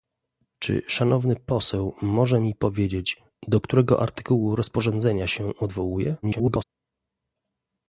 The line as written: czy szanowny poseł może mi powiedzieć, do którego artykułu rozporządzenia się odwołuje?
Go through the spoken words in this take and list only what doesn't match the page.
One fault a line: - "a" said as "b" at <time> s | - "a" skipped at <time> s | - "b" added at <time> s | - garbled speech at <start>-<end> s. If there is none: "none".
- garbled speech at 6.2-6.6 s